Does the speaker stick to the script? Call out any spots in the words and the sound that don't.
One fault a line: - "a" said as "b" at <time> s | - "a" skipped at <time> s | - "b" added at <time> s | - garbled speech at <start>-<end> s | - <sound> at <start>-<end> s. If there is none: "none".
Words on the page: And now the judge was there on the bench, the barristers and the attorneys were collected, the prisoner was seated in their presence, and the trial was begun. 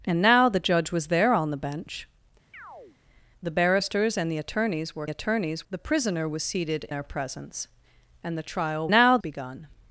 - chirp at 2.5-3.0 s
- "collected" said as "attorneys" at 5.1 s
- "in" skipped at 6.9 s
- "was" said as "now" at 8.9 s